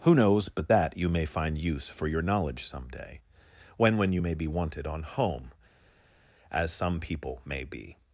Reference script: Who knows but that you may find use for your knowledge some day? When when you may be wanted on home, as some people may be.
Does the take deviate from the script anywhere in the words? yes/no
no